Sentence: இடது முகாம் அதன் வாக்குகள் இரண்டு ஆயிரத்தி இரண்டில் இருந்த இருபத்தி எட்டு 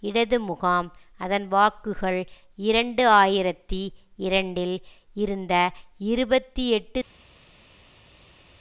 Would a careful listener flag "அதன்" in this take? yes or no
no